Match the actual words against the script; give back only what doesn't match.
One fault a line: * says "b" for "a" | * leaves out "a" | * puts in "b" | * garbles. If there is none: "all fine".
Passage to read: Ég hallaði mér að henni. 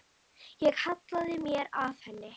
all fine